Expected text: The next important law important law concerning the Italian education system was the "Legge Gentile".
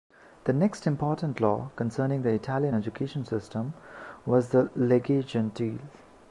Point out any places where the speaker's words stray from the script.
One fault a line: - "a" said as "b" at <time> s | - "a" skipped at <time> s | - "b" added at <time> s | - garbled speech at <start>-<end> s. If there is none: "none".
- "important law" skipped at 1.7 s